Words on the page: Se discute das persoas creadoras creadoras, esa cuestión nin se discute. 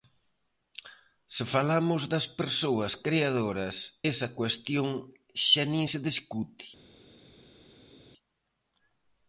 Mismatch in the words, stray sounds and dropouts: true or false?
true